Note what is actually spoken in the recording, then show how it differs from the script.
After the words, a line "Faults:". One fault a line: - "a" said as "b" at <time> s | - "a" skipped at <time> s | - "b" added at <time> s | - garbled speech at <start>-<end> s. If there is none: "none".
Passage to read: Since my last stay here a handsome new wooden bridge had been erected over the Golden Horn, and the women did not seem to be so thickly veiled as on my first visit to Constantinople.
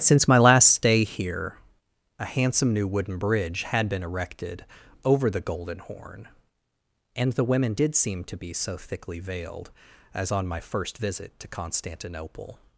Since my last stay here a handsome new wooden bridge had been erected over the Golden Horn, and the women did seem to be so thickly veiled as on my first visit to Constantinople.
Faults:
- "not" skipped at 8.0 s